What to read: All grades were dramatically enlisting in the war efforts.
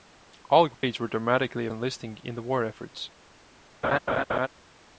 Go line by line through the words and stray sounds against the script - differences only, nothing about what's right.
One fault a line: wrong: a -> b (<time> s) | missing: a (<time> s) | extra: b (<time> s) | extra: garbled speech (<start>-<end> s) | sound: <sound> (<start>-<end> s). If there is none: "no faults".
sound: dropout (0.7-0.8 s)
sound: laugh (3.8-4.5 s)